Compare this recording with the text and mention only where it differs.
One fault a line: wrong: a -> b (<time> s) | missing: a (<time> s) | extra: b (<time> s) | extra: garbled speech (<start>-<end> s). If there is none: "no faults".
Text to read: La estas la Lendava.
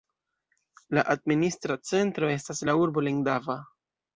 extra: administra centro (1.1 s)
extra: urbo (2.9 s)